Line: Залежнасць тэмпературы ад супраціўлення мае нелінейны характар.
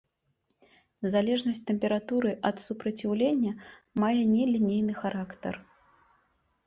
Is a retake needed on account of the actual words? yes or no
no